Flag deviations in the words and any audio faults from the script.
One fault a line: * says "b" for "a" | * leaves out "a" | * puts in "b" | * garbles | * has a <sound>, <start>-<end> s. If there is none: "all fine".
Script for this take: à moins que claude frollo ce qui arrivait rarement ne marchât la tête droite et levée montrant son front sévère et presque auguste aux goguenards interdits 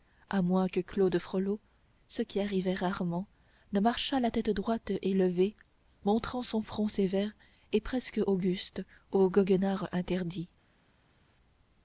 all fine